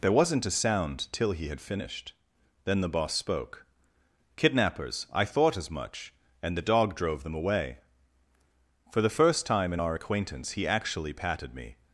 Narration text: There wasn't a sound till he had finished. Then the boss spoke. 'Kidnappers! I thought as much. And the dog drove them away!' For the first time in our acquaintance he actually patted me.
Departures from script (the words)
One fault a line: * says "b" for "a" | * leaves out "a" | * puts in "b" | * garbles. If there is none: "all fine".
all fine